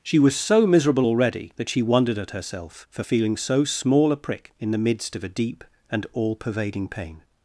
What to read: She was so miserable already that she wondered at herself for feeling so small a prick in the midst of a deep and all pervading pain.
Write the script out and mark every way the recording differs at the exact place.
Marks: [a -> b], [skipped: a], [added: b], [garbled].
She was so miserable already that she wondered at herself for feeling so small a prick in the midst of a deep and all pervading pain.